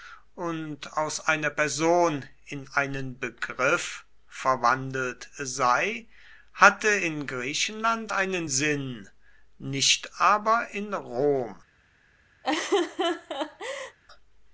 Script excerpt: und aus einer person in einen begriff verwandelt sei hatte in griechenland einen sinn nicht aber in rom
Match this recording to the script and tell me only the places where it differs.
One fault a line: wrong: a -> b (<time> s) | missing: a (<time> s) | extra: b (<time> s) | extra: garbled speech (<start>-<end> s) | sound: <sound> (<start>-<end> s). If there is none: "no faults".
sound: laugh (12.4-14.0 s)